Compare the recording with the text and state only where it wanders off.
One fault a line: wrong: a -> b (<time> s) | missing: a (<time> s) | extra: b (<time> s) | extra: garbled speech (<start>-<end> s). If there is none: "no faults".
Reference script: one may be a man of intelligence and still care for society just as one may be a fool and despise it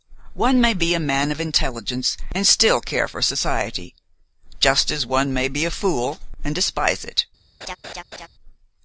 no faults